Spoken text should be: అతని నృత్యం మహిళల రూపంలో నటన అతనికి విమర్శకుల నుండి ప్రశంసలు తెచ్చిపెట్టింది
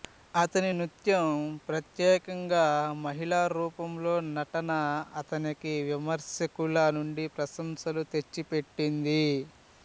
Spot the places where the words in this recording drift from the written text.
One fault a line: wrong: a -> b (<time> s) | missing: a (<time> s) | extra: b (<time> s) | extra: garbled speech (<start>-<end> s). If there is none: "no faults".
extra: ప్రత్యేకంగా (1.7 s)